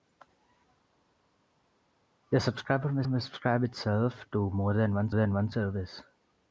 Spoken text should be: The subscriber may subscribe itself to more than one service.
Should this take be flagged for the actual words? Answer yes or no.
yes